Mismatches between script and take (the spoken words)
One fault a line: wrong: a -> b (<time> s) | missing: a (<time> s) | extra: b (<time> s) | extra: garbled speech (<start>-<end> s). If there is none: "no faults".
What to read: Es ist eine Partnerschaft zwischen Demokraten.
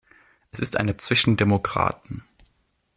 missing: Partnerschaft (0.9 s)